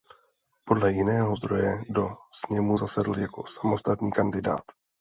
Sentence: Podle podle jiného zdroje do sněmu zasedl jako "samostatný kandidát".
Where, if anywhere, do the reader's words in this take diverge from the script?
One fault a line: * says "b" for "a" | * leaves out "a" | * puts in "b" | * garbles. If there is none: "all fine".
* leaves out "podle"